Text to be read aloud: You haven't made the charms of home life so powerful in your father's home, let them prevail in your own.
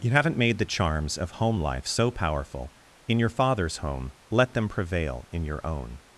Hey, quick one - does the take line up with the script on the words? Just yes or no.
yes